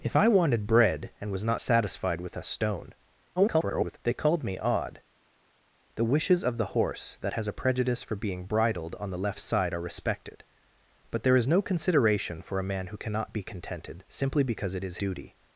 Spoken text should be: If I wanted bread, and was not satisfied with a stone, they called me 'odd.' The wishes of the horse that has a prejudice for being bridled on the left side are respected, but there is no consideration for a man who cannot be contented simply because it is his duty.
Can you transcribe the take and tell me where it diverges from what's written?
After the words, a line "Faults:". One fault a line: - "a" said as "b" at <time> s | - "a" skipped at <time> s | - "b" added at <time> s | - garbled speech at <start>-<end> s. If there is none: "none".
If I wanted bread, and was not satisfied with a stone, [garbled] they called me 'odd.' The wishes of the horse that has a prejudice for being bridled on the left side are respected, but there is no consideration for a man who cannot be contented simply because it is duty.
Faults:
- garbled speech at 3.4-4.0 s
- "his" skipped at 15.0 s